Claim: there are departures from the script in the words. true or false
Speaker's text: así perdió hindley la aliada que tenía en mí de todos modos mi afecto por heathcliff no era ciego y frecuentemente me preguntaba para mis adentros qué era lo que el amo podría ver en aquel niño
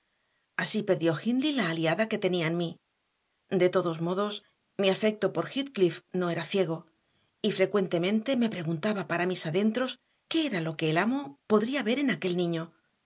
false